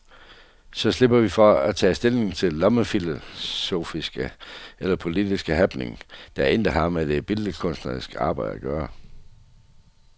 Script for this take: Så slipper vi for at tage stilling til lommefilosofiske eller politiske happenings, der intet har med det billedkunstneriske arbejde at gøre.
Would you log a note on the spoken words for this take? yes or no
no